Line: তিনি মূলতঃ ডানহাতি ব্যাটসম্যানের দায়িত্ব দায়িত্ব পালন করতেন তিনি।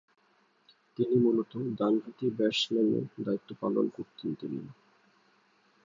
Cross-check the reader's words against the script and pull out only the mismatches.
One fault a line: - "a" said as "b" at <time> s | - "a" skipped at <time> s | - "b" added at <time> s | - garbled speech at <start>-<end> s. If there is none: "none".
- "দায়িত্ব" skipped at 3.5 s